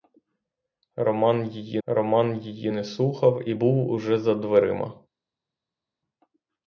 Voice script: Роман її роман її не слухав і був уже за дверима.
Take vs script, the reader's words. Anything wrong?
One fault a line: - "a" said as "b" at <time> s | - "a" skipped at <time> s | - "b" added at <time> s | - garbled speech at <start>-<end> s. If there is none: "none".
none